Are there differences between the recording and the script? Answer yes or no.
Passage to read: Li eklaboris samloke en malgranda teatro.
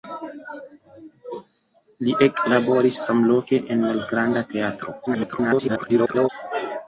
yes